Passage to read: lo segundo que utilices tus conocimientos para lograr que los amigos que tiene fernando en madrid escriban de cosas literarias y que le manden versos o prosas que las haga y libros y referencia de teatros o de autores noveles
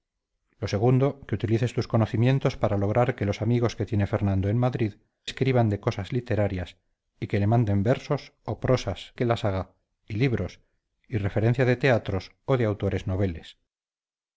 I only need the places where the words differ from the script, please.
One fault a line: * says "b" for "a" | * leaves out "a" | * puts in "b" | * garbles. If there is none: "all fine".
all fine